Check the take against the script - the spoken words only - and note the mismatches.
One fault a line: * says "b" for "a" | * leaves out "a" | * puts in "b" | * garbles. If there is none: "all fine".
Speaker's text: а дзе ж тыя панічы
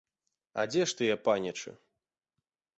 all fine